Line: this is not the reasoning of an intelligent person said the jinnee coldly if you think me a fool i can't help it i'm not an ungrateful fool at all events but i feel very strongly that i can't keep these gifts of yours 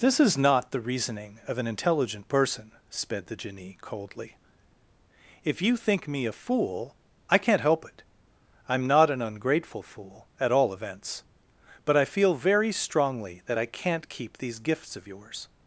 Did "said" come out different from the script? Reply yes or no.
yes